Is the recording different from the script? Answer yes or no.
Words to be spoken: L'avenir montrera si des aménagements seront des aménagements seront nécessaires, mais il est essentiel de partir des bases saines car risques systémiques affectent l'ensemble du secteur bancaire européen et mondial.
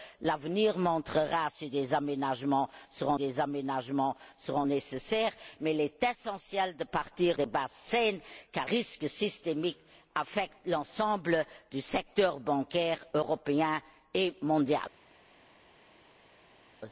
no